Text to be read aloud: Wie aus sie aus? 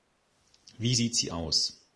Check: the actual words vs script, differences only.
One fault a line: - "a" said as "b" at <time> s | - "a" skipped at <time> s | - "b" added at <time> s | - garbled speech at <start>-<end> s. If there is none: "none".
- "aus" said as "sieht" at 0.9 s